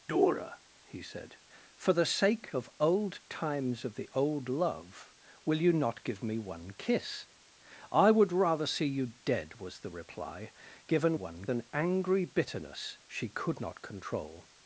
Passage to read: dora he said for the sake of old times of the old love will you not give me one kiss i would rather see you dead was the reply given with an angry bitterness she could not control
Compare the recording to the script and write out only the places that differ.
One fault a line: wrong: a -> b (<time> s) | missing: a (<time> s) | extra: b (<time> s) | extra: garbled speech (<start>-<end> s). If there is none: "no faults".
wrong: with -> one (11.1 s)